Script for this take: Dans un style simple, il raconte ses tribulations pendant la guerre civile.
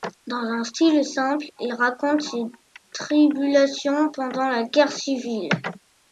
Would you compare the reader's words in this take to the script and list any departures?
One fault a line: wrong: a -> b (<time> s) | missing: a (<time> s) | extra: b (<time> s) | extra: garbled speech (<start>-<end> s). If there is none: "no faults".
no faults